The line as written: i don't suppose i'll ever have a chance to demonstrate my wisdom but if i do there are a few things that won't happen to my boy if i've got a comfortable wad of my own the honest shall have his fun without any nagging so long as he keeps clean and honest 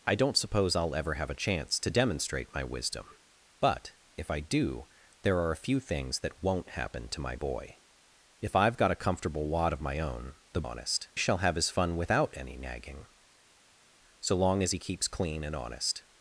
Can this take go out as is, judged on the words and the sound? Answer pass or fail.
pass